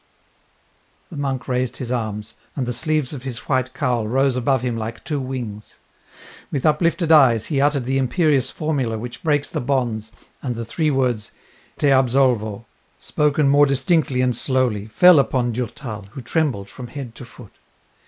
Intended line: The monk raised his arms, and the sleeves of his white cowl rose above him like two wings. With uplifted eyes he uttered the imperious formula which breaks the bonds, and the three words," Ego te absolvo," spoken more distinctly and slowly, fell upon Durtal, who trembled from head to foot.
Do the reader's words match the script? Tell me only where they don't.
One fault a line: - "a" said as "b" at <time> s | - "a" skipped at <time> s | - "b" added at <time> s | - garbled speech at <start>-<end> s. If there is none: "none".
- "Ego" skipped at 11.3 s